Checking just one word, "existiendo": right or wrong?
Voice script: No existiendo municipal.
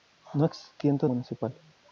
right